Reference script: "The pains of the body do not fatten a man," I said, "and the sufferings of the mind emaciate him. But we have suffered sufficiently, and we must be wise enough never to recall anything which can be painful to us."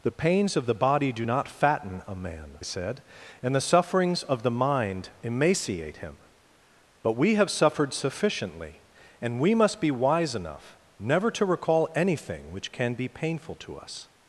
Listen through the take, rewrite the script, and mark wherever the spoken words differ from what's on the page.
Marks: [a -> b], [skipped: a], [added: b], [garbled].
"The pains of the body do not fatten a man," [skipped: I] said, "and the sufferings of the mind emaciate him. But we have suffered sufficiently, and we must be wise enough never to recall anything which can be painful to us."